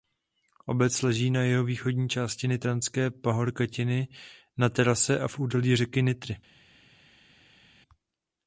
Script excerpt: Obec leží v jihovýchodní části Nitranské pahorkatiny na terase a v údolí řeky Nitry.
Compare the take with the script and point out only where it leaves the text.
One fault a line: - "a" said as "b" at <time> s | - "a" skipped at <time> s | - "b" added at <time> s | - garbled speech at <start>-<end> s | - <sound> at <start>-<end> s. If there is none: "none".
- "v" said as "na" at 1.3 s